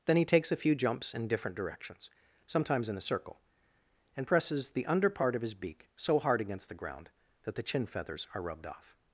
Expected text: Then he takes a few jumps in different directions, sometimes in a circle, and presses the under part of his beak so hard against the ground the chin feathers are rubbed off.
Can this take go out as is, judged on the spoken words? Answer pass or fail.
fail